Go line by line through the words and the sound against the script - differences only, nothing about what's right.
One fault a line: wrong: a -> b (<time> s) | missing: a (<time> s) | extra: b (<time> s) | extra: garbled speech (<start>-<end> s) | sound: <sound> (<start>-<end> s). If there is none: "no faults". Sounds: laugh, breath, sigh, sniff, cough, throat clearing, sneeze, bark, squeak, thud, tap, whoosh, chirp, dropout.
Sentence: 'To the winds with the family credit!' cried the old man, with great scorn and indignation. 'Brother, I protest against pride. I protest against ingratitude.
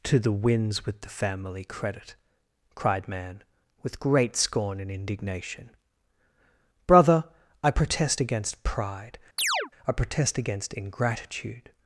missing: the old (3.1 s)
sound: chirp (9.4-9.7 s)